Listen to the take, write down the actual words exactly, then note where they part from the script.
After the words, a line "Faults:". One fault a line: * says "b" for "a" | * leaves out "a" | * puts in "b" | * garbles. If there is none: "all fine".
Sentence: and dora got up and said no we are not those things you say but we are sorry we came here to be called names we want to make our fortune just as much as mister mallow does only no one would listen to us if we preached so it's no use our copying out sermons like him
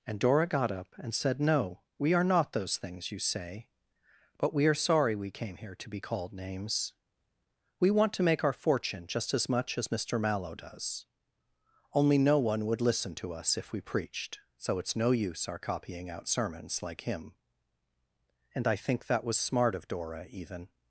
and dora got up and said no we are not those things you say but we are sorry we came here to be called names we want to make our fortune just as much as mister mallow does only no one would listen to us if we preached so it's no use our copying out sermons like him and i think that was smart of dora even
Faults:
* puts in "and i think that was smart of dora even"